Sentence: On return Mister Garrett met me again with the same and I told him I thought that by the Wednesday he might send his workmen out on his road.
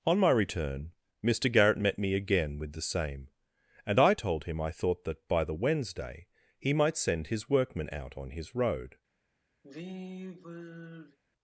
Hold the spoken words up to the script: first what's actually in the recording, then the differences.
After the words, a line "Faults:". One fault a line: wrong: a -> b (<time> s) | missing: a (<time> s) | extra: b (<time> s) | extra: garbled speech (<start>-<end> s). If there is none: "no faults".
On my return Mister Garrett met me again with the same and I told him I thought that by the Wednesday he might send his workmen out on his road.
Faults:
extra: my (0.2 s)